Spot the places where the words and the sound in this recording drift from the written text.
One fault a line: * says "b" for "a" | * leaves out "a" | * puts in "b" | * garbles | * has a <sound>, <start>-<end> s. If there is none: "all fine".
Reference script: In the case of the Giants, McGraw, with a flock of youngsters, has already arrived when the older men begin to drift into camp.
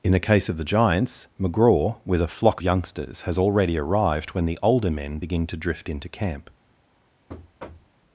* leaves out "of"
* has a thud, 7.3-8.0 s